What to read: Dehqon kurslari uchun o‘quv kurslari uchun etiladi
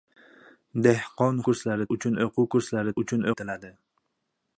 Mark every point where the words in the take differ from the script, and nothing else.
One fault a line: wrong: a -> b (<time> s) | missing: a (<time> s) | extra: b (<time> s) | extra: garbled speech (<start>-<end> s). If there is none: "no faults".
no faults